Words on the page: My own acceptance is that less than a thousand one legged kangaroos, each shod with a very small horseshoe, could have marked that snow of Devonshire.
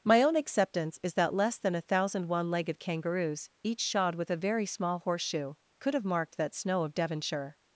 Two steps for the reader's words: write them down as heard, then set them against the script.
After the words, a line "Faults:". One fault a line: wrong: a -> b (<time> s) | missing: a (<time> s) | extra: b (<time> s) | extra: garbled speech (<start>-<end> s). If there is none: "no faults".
My own acceptance is that less than a thousand one legged kangaroos, each shod with a very small horseshoe, could have marked that snow of Devonshire.
Faults:
no faults